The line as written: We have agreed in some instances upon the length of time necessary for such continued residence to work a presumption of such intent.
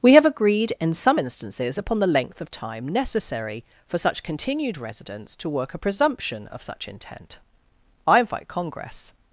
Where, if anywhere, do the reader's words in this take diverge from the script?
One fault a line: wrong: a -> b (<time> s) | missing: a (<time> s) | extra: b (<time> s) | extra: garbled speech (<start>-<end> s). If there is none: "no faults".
extra: I invite Congress (8.1 s)